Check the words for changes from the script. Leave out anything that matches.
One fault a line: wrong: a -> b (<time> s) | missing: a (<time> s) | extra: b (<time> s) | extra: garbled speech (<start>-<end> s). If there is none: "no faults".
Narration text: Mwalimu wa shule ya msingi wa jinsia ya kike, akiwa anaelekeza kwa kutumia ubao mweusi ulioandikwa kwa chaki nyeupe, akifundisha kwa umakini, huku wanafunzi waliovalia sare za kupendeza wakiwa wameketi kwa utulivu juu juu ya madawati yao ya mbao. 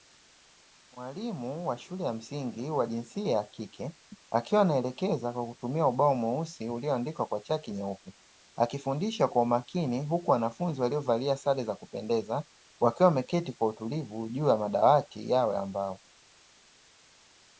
missing: juu (14.5 s)